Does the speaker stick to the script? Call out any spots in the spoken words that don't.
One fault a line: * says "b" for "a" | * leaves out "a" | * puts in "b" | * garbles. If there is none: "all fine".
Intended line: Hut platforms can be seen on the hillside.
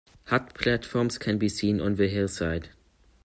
all fine